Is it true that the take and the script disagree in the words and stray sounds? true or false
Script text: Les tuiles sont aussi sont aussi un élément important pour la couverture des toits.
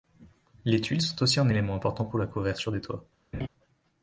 true